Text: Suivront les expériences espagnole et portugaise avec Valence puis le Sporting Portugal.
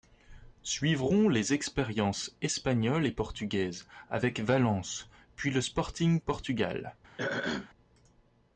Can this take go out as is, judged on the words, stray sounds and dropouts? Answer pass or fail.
fail